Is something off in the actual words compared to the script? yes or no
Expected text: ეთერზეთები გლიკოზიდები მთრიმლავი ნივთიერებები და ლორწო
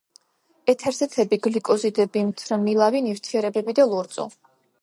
no